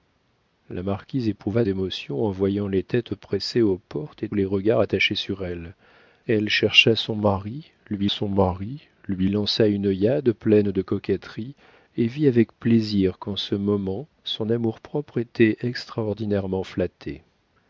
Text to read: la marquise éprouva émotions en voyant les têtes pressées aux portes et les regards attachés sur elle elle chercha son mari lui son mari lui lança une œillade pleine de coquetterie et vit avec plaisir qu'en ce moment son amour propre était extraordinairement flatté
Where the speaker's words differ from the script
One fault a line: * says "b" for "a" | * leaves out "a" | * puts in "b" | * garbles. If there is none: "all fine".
all fine